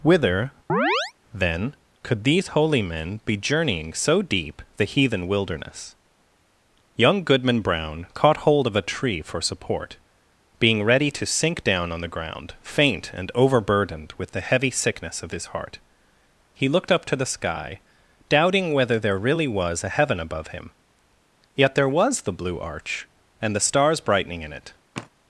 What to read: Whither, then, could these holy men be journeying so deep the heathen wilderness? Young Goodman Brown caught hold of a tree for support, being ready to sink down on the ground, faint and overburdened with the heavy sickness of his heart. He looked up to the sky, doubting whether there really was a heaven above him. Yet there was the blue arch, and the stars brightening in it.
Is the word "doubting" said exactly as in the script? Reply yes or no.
yes